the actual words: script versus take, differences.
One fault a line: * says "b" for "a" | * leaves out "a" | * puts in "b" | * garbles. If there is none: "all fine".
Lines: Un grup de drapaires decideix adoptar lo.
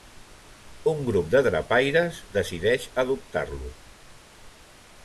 all fine